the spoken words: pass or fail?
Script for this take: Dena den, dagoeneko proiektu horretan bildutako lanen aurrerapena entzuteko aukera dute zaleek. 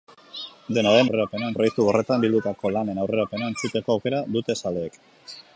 fail